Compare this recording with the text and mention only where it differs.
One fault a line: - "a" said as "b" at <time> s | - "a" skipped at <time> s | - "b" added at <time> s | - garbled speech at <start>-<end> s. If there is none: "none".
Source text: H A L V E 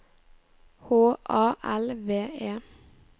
none